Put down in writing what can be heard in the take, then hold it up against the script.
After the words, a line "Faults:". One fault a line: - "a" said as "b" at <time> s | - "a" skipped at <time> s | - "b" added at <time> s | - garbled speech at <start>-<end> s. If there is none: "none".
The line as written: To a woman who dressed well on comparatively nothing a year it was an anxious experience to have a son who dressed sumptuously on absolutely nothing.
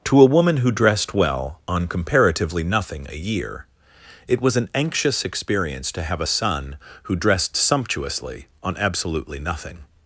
To a woman who dressed well on comparatively nothing a year it was an anxious experience to have a son who dressed sumptuously on absolutely nothing.
Faults:
none